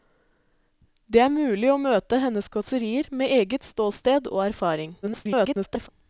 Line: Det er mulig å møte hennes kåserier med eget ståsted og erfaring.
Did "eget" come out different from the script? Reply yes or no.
no